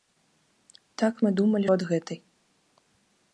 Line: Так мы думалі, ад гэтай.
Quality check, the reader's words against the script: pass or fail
pass